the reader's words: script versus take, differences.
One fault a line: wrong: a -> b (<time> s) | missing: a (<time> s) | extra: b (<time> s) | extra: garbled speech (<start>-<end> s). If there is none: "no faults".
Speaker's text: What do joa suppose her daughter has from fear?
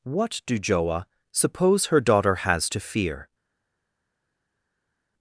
wrong: from -> to (2.7 s)